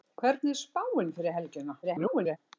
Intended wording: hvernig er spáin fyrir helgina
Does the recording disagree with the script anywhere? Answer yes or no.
yes